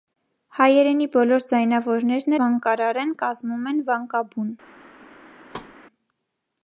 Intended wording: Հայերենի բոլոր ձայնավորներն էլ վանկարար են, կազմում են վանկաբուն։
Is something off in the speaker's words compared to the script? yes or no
yes